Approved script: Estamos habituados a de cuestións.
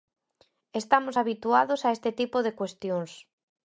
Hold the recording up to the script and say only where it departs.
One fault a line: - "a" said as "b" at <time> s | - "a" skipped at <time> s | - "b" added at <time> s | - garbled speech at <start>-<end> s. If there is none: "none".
- "este tipo" added at 2.0 s